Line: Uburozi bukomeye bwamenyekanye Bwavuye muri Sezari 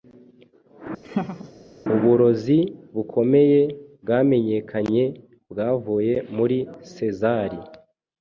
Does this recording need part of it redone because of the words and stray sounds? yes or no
yes